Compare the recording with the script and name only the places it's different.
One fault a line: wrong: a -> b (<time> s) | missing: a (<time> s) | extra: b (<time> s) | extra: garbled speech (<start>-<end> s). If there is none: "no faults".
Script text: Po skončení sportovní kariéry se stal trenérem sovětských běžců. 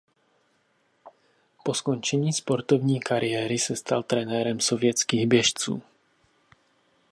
no faults